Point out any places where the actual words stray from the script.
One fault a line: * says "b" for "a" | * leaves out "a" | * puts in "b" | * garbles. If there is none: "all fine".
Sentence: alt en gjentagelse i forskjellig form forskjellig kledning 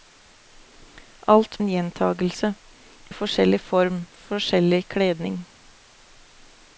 all fine